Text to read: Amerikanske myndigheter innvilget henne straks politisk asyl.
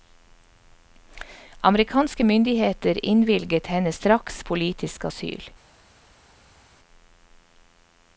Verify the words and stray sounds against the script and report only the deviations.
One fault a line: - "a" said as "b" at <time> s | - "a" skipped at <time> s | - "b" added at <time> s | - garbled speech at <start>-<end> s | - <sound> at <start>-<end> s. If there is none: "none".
none